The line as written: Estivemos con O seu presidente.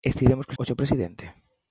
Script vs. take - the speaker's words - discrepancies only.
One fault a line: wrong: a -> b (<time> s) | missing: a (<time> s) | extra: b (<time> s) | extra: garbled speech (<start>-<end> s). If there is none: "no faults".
no faults